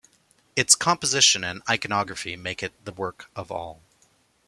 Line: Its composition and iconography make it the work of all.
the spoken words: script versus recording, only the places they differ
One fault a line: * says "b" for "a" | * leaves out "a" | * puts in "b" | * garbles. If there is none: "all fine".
all fine